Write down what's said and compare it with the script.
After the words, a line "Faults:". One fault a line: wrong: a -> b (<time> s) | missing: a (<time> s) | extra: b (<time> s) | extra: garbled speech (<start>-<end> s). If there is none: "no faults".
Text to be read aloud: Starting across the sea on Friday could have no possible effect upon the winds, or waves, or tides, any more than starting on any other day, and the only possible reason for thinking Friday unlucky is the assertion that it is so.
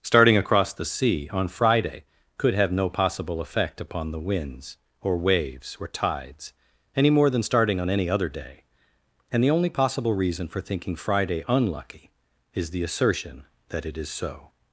Starting across the sea on Friday could have no possible effect upon the winds, or waves, or tides, any more than starting on any other day, and the only possible reason for thinking Friday unlucky is the assertion that it is so.
Faults:
no faults